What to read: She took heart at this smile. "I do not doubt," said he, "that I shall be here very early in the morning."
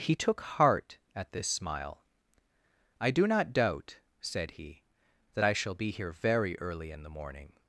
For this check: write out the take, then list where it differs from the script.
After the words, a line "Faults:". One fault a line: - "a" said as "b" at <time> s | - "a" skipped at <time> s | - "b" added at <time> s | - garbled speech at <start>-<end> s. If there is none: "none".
He took heart at this smile. "I do not doubt," said he, "that I shall be here very early in the morning."
Faults:
- "She" said as "He" at 0.0 s